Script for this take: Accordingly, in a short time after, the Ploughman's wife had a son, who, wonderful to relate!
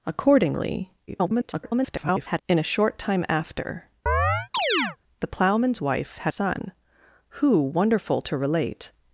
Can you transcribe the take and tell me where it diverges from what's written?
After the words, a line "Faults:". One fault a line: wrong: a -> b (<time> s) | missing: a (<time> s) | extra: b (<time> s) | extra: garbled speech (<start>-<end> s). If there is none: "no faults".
Accordingly, [garbled] in a short time after, the Ploughman's wife had son, who, wonderful to relate!
Faults:
extra: garbled speech (1.1-2.4 s)
missing: a (6.3 s)